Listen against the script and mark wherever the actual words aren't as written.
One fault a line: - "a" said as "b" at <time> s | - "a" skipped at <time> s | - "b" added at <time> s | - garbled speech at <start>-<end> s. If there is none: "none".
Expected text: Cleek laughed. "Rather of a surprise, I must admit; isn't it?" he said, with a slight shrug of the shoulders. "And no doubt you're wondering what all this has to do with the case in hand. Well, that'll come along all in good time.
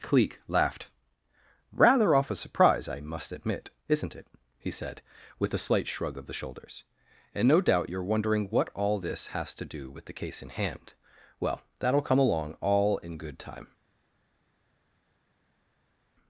- "of" said as "off" at 2.1 s